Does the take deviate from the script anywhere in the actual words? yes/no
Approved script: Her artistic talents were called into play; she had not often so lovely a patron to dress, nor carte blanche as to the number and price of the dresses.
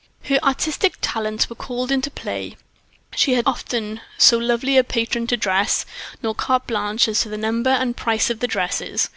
yes